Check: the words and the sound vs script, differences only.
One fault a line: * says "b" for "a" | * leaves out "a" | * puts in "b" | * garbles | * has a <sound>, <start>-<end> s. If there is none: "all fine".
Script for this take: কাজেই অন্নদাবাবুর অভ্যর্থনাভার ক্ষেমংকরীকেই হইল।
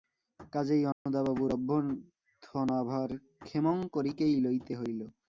* has a dropout, 0.9-1.1 s
* puts in "লইতে"